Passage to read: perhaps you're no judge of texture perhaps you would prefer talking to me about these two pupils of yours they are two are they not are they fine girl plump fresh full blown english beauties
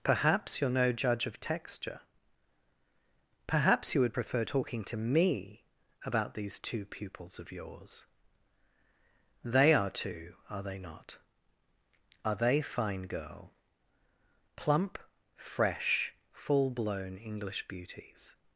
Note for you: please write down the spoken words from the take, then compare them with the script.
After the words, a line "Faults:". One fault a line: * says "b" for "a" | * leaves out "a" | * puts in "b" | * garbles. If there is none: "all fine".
perhaps you're no judge of texture perhaps you would prefer talking to me about these two pupils of yours they are two are they not are they fine girl plump fresh full blown english beauties
Faults:
all fine